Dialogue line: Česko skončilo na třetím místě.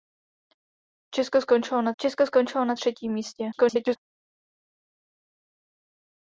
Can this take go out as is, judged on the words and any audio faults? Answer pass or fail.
fail